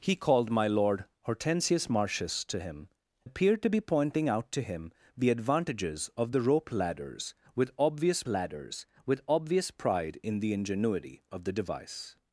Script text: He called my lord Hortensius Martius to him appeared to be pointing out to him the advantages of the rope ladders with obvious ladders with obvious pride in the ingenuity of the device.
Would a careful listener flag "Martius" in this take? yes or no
no